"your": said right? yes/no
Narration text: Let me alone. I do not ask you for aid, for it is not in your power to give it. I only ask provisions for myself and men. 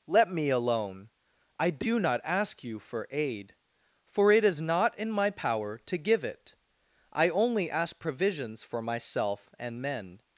no